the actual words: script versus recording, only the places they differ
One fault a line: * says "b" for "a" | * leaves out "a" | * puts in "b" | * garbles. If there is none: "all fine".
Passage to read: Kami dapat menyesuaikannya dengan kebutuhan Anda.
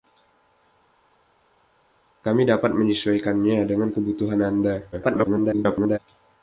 * garbles